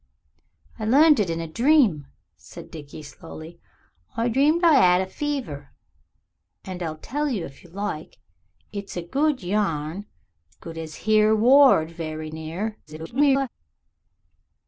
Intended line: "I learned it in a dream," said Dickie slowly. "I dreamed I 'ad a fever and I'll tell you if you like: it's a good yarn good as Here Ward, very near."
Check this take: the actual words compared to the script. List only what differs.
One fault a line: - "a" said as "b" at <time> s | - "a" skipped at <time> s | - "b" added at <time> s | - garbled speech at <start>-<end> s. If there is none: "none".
- garbled speech at 12.9-13.5 s